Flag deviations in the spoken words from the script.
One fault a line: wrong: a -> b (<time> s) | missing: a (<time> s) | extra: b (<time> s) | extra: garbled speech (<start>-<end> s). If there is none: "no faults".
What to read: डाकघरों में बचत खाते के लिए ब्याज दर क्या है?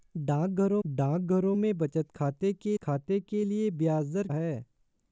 extra: डाकघरों (0.9 s)
extra: खाते के (2.8 s)
missing: क्या (4.3 s)